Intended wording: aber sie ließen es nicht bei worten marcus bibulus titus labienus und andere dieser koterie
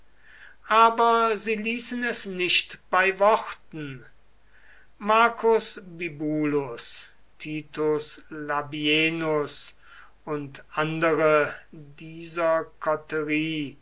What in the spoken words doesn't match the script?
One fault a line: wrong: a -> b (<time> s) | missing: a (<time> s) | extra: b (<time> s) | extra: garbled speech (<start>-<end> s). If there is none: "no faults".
no faults